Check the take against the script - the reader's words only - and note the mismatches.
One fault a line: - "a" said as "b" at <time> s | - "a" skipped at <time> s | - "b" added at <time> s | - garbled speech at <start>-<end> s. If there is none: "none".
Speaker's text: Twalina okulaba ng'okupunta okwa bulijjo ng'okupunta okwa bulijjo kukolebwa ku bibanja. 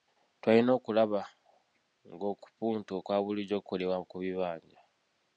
- "ng'okupunta okwa bulijjo" skipped at 3.6 s